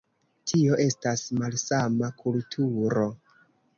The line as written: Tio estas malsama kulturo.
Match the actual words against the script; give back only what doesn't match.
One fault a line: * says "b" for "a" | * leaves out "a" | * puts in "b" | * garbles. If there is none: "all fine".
all fine